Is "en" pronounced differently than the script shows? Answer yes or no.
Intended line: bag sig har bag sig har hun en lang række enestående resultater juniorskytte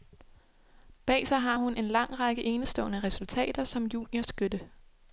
no